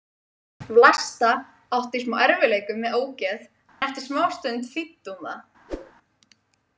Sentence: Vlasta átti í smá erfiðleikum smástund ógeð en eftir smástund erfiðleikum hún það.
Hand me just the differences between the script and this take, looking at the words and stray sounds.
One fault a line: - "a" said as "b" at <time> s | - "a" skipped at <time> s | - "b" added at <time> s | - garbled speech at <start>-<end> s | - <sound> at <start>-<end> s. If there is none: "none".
- "smástund" said as "með" at 2.9 s
- dropout at 3.7-3.8 s
- "erfiðleikum" said as "þýddi" at 4.7 s
- whoosh at 5.7-5.9 s